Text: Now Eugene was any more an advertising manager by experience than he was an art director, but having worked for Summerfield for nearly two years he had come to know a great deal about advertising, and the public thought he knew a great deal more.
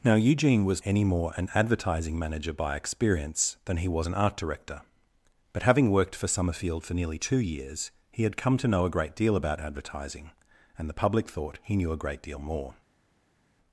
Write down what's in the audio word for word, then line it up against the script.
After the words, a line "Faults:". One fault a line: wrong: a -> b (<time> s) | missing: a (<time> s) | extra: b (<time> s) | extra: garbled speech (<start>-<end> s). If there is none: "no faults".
Now Eugene was any more an advertising manager by experience than he was an art director, but having worked for Summerfield for nearly two years he had come to know a great deal about advertising, and the public thought he knew a great deal more.
Faults:
no faults